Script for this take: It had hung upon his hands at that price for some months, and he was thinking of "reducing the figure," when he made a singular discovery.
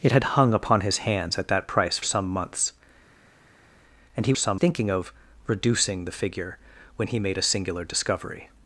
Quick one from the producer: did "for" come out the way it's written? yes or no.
no